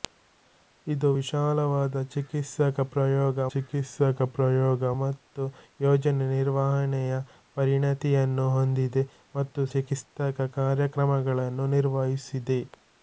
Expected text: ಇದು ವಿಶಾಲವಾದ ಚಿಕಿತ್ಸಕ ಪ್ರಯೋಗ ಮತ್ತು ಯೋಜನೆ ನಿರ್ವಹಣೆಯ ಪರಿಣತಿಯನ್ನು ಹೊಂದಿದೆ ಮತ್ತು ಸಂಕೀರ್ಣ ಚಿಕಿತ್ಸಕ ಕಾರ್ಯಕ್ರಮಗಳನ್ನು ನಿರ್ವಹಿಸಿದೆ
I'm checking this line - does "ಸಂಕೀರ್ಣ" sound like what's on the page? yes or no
no